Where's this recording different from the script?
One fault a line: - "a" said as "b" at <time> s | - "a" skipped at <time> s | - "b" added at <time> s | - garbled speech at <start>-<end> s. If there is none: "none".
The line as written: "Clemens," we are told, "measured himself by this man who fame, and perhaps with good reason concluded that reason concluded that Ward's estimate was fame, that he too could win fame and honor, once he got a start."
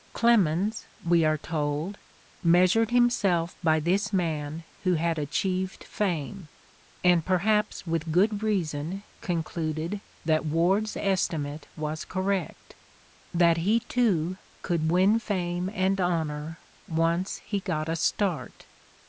- "had achieved" added at 5.0 s
- "reason concluded that" skipped at 10.4 s
- "fame" said as "correct" at 12.0 s